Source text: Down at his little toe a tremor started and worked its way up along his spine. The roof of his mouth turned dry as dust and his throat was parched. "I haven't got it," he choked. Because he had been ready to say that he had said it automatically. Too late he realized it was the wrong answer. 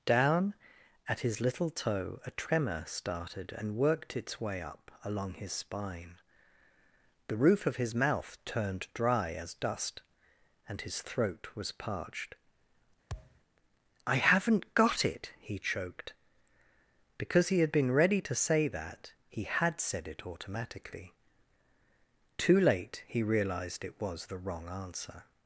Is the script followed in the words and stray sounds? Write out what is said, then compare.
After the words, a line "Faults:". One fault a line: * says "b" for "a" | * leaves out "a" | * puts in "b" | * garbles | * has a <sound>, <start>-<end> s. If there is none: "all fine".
Down at his little toe a tremor started and worked its way up along his spine. The roof of his mouth turned dry as dust and his throat was parched. "I haven't got it," he choked. Because he had been ready to say that he had said it automatically. Too late he realized it was the wrong answer.
Faults:
* has a thud, 13.1-13.4 s